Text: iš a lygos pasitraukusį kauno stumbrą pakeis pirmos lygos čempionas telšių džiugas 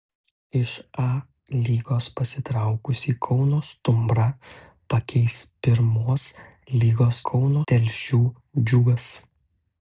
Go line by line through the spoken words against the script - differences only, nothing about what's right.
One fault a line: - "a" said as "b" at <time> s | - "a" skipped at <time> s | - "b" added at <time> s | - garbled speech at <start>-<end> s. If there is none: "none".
- "čempionas" said as "kauno" at 7.3 s